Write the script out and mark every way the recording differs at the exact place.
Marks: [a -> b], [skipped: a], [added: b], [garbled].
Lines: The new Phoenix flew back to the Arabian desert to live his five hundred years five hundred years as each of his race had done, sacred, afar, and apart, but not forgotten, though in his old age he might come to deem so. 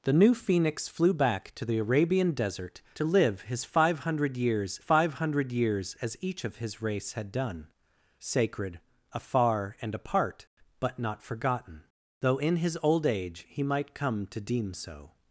The new Phoenix flew back to the Arabian desert to live his five hundred years five hundred years as each of his race had done, sacred, afar, and apart, but not forgotten, though in his old age he might come to deem so.